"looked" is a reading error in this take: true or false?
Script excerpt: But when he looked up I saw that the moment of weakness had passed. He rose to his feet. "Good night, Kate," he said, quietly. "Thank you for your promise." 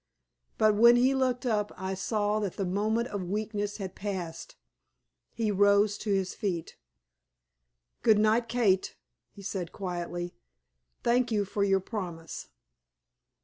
false